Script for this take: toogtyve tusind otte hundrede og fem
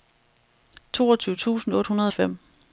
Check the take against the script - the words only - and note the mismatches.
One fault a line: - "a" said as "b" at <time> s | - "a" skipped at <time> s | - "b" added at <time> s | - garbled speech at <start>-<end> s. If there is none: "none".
none